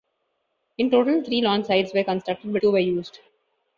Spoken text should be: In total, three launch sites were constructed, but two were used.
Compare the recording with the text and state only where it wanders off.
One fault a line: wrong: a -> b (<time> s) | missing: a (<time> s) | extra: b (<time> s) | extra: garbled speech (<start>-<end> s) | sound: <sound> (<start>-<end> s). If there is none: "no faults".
no faults